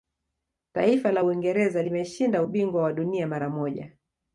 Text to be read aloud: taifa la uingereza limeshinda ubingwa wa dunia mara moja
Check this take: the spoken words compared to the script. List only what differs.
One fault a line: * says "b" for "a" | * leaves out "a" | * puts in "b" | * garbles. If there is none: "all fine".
all fine